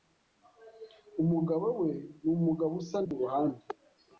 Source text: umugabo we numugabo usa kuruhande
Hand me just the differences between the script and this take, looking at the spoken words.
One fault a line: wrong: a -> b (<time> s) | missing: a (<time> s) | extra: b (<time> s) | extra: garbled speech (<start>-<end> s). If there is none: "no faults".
no faults